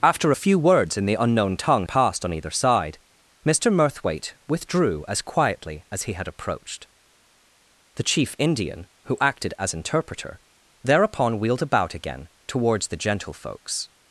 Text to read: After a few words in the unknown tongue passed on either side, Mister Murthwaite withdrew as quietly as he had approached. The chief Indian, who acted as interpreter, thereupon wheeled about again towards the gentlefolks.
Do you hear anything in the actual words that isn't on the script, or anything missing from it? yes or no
no